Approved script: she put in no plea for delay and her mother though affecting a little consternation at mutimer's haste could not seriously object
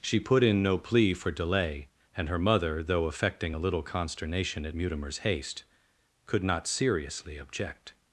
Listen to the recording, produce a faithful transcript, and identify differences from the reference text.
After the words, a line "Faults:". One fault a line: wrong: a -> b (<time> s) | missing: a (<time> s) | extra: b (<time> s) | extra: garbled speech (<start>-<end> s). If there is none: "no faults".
she put in no plea for delay and her mother though affecting a little consternation at mutimer's haste could not seriously object
Faults:
no faults